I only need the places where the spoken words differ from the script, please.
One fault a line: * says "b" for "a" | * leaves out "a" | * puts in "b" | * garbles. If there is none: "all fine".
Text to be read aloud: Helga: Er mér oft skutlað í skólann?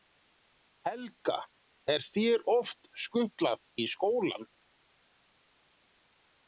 * says "þér" for "mér"